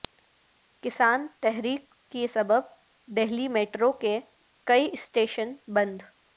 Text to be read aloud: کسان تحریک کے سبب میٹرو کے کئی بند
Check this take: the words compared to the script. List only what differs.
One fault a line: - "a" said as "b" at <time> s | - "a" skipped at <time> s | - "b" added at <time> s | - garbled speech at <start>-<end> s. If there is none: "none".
- "دہلی" added at 3.1 s
- "اسٹیشن" added at 4.9 s